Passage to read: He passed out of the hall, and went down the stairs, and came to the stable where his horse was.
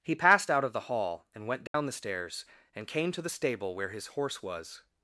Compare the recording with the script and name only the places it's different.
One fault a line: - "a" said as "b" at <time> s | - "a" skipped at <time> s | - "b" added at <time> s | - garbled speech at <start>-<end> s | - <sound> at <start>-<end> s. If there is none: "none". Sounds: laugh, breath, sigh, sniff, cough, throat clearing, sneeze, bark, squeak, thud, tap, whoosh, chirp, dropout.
- dropout at 1.7-1.7 s